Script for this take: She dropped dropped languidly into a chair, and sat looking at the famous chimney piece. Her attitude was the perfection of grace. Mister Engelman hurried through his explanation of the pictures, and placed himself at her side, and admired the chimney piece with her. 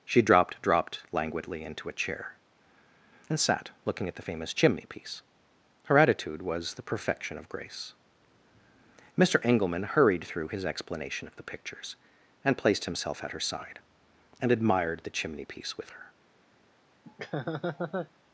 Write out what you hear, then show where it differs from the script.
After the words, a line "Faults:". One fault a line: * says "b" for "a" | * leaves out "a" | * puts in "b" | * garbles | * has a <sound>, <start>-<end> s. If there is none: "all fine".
She dropped dropped languidly into a chair, and sat looking at the famous chimney piece. Her attitude was the perfection of grace. Mister Engelman hurried through his explanation of the pictures, and placed himself at her side, and admired the chimney piece with her.
Faults:
* has a laugh, 17.0-18.1 s